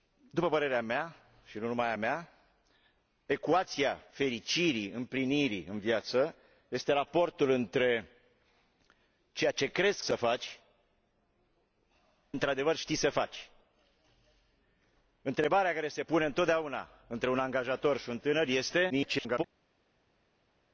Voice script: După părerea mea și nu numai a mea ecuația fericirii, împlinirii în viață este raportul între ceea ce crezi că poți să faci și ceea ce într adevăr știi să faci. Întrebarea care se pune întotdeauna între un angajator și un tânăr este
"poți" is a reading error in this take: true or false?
true